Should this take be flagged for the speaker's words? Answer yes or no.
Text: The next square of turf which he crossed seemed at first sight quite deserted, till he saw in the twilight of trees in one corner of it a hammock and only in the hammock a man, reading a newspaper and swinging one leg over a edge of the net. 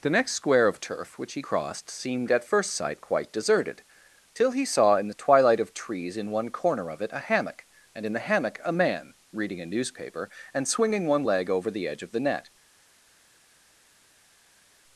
yes